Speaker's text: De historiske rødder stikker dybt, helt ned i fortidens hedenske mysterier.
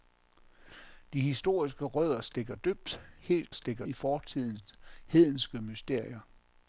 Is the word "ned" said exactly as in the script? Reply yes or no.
no